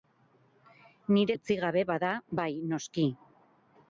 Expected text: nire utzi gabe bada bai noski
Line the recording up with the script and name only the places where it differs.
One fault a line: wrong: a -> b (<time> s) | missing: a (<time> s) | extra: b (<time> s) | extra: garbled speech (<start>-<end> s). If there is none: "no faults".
no faults